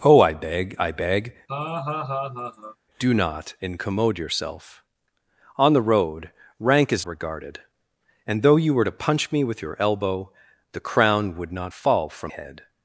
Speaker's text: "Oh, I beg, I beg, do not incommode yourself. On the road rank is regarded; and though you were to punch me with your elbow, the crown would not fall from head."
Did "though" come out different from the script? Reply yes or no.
no